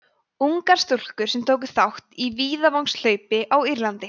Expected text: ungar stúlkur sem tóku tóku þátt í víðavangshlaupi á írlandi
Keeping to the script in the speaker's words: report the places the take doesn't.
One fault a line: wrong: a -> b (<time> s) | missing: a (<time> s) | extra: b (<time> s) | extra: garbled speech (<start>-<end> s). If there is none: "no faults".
missing: tóku (1.7 s)